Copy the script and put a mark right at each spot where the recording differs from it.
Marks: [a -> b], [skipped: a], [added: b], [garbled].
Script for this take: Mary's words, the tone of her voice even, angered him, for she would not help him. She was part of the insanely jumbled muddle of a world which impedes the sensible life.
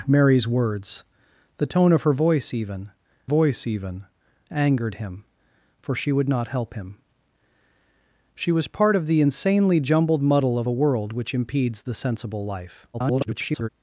Mary's words, the tone of her voice even, [added: voice even] angered him, for she would not help him. She was part of the insanely jumbled muddle of a world which impedes the sensible life. [garbled]